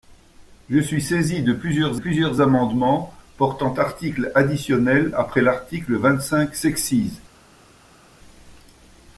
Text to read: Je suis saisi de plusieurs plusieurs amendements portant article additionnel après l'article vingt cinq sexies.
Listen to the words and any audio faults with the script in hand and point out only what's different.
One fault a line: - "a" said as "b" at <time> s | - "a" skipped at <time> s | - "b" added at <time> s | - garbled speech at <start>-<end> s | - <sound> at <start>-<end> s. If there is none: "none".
none